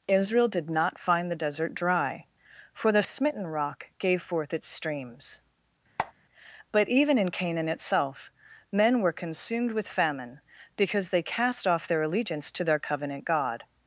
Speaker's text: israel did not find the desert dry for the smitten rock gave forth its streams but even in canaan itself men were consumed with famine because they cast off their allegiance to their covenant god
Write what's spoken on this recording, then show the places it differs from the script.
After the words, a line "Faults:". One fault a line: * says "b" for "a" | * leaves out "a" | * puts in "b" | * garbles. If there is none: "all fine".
israel did not find the desert dry for the smitten rock gave forth its streams but even in canaan itself men were consumed with famine because they cast off their allegiance to their covenant god
Faults:
all fine